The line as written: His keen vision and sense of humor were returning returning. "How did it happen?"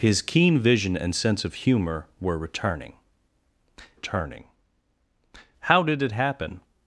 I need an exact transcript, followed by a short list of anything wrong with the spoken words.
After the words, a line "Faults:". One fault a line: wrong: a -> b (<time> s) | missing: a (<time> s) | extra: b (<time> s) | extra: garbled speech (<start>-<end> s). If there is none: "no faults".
His keen vision and sense of humor were returning returning. "How did it happen?"
Faults:
no faults